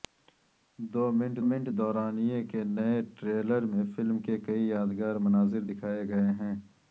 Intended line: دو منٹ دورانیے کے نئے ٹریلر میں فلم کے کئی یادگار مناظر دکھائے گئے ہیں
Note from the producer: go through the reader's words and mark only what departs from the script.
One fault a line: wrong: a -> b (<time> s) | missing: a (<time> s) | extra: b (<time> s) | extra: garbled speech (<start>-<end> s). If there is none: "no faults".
extra: منٹ (1.5 s)